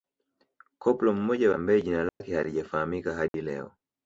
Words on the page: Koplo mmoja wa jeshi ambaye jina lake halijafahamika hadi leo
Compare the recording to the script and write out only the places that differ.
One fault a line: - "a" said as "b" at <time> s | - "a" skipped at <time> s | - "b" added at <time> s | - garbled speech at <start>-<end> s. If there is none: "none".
- "wa jeshi" skipped at 1.5 s